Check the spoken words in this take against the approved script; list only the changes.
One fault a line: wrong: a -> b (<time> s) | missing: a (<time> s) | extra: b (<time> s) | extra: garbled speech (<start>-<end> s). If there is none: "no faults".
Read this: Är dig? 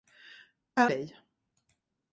no faults